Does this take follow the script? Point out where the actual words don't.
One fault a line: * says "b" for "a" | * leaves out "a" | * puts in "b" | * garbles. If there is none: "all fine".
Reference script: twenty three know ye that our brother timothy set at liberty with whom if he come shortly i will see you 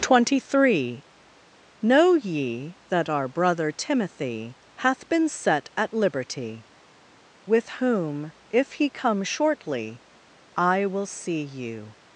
* puts in "hath been"